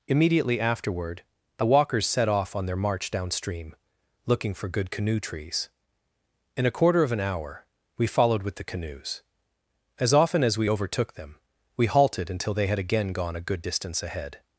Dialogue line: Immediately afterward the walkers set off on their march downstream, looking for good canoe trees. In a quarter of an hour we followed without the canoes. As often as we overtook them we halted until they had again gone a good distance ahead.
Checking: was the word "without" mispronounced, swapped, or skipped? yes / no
yes